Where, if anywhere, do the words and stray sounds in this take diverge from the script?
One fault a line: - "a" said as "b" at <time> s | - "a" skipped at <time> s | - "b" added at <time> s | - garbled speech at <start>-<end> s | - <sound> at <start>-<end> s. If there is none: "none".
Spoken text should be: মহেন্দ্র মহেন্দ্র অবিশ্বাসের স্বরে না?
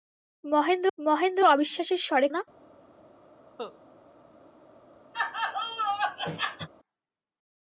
- cough at 3.6-3.8 s
- laugh at 5.1-6.7 s